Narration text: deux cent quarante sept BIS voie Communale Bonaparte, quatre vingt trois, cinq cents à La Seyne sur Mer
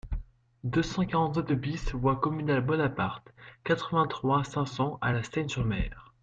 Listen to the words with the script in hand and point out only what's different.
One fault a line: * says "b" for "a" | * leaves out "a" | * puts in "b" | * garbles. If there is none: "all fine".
all fine